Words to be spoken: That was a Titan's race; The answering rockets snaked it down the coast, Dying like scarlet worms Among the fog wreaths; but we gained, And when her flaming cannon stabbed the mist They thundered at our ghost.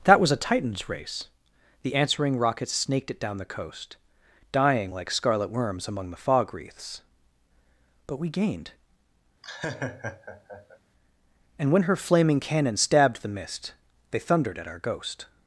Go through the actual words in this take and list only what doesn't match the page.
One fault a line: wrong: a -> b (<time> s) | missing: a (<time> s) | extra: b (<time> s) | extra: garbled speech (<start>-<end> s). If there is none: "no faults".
no faults